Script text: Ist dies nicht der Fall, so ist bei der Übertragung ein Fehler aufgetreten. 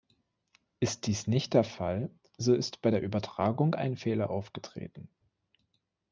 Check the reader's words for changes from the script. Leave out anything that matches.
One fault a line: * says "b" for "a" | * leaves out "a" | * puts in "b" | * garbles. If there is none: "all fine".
all fine